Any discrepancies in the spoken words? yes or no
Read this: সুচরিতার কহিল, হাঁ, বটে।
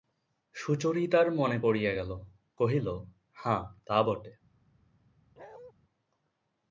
yes